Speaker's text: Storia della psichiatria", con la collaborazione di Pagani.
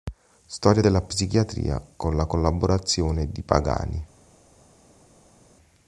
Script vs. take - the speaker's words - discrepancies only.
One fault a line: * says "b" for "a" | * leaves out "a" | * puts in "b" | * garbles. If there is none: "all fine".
all fine